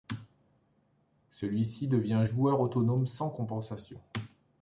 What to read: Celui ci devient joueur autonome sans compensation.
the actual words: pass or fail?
pass